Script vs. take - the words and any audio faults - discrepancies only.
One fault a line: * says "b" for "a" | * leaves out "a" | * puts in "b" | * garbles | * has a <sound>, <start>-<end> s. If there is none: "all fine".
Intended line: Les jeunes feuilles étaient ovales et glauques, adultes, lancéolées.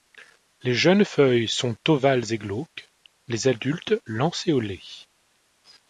* says "sont" for "étaient"
* puts in "les"